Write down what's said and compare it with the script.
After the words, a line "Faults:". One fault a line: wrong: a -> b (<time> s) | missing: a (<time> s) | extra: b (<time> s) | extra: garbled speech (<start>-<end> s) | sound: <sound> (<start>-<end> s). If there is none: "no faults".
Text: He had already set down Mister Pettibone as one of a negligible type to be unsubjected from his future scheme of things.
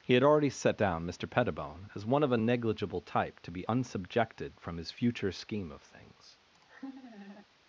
He had already set down Mister Pettibone as one of a negligible type to be unsubjected from his future scheme of things.
Faults:
sound: laugh (6.5-7.5 s)